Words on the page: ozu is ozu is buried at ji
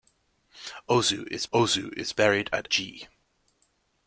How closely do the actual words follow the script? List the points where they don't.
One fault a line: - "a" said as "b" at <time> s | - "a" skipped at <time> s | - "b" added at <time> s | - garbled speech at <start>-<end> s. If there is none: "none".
none